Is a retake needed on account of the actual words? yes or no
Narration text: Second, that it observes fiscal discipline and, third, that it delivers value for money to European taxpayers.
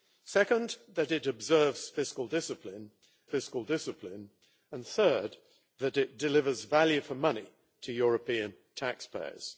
yes